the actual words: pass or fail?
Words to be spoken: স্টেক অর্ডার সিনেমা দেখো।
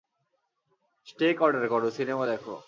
fail